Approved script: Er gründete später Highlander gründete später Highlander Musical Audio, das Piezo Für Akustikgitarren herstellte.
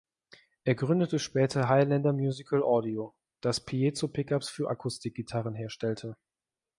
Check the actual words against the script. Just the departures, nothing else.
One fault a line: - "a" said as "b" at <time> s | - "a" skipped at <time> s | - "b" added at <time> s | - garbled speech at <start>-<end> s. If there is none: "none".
- "gründete später Highlander" skipped at 2.1 s
- "Pickups" added at 4.1 s